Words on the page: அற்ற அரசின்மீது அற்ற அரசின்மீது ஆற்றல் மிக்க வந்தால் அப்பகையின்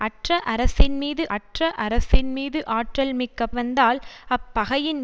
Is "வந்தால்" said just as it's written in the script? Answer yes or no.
yes